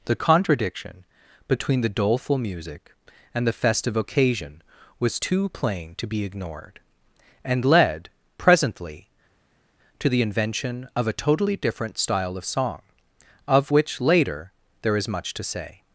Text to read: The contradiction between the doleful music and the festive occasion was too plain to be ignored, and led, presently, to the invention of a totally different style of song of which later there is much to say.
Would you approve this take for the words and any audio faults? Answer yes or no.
yes